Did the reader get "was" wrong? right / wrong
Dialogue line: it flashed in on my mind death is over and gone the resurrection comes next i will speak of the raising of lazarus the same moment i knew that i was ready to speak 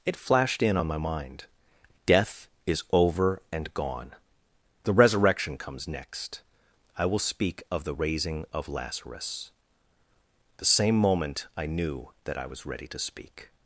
right